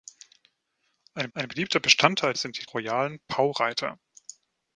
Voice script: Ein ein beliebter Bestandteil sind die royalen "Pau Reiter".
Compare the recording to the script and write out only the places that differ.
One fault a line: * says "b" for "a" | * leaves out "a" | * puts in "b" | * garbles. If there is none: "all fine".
all fine